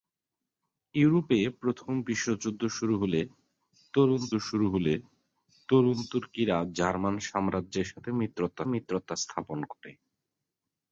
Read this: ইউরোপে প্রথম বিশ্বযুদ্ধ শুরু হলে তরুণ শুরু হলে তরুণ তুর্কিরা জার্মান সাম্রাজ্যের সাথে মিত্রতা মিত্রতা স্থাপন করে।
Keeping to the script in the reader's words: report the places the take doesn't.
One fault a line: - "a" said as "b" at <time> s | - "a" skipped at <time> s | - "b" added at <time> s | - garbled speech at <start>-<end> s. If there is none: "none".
none